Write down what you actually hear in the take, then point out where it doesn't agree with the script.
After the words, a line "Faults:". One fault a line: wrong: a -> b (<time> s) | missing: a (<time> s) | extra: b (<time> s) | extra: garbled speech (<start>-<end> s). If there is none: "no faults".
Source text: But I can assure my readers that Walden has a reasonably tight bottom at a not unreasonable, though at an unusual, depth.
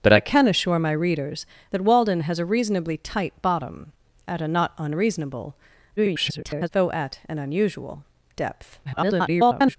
But I can assure my readers that Walden has a reasonably tight bottom at a not unreasonable, [garbled] though at an unusual, depth. [garbled]
Faults:
extra: garbled speech (6.0-6.7 s)
extra: garbled speech (8.8-9.8 s)